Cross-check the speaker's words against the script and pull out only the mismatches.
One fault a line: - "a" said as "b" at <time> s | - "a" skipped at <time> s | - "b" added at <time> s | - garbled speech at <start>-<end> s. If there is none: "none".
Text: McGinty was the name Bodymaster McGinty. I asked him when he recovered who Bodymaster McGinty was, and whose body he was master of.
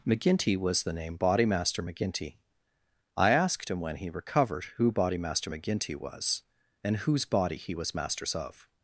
- "master" said as "masters" at 7.9 s